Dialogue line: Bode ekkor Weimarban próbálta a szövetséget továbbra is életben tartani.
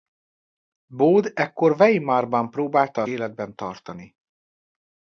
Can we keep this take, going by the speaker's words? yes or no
no